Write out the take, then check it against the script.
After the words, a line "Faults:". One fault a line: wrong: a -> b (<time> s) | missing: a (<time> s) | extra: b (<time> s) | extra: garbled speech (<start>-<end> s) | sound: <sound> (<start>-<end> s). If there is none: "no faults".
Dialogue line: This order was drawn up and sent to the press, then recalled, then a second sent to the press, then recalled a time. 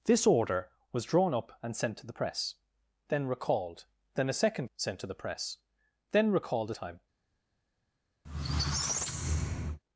This order was drawn up and sent to the press, then recalled, then a second sent to the press, then recalled a time.
Faults:
sound: squeak (8.2-9.8 s)